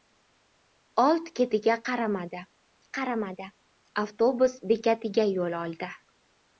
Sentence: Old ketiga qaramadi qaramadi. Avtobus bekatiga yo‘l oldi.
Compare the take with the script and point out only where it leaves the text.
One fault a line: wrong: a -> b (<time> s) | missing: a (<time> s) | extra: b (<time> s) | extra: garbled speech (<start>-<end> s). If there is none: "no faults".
no faults